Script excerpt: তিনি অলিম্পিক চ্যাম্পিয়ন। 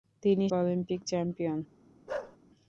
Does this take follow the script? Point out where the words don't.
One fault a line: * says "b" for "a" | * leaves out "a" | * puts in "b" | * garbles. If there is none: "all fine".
all fine